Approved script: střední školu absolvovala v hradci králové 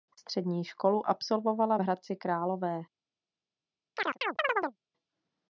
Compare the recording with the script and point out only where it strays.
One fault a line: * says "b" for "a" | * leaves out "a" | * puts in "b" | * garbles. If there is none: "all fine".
all fine